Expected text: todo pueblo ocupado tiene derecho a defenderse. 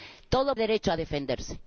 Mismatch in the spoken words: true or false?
true